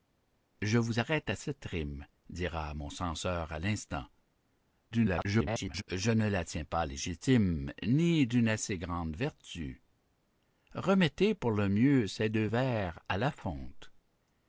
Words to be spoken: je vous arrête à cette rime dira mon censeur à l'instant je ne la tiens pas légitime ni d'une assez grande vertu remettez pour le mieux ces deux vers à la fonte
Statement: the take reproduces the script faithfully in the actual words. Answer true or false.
false